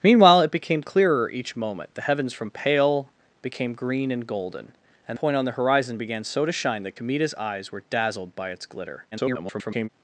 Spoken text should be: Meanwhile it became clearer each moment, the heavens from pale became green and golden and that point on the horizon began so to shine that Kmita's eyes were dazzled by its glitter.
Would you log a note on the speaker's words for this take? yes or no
yes